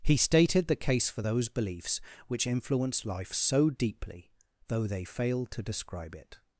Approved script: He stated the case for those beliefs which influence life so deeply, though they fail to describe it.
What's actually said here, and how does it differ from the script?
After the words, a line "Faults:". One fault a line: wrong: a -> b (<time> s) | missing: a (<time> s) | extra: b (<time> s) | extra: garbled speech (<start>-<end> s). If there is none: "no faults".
He stated the case for those beliefs which influence life so deeply, though they fail to describe it.
Faults:
no faults